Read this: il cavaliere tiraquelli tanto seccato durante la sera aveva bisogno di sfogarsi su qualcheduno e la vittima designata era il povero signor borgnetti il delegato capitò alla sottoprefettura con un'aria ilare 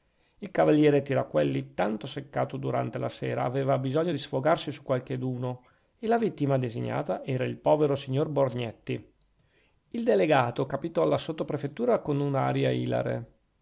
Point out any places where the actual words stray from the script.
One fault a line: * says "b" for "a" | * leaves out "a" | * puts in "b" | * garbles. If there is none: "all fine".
all fine